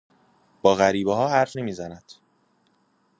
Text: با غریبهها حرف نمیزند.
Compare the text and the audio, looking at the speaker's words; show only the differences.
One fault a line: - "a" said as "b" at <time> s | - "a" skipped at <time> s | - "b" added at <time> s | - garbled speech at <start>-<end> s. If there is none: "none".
none